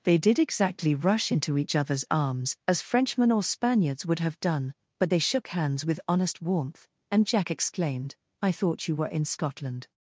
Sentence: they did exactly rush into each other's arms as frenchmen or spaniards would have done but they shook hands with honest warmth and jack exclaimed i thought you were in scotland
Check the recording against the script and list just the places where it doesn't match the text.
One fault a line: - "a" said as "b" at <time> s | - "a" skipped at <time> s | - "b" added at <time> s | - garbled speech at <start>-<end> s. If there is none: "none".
none